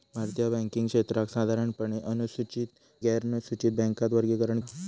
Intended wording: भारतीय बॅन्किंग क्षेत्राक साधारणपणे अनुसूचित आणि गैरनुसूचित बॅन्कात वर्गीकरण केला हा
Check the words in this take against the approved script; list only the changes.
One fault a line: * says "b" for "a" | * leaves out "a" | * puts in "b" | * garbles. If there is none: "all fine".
* leaves out "आणि"
* leaves out "केला"